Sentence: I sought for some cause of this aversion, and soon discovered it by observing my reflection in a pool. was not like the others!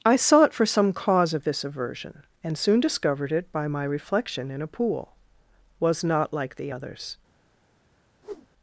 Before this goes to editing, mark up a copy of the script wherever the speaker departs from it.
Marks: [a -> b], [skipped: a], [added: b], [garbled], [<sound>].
I sought for some cause of this aversion, and soon discovered it by [skipped: observing] my reflection in a pool. was not like the others! [whoosh]